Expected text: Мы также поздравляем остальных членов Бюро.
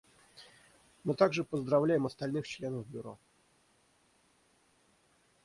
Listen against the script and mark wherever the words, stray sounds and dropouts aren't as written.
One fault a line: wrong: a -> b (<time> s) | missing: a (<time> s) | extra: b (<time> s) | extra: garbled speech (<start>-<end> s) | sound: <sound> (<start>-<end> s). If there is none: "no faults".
no faults